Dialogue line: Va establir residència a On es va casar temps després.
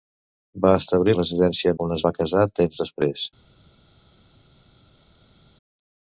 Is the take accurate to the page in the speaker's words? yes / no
yes